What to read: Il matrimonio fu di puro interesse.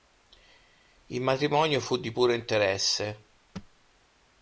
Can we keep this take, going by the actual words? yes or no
yes